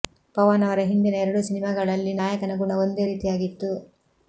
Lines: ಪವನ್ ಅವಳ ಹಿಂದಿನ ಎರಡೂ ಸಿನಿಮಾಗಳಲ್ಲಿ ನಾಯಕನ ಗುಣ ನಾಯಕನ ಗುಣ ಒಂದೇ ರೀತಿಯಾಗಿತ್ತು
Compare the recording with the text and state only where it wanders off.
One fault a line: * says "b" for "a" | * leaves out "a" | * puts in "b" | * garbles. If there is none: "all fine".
* says "ಅವರ" for "ಅವಳ"
* leaves out "ನಾಯಕನ ಗುಣ"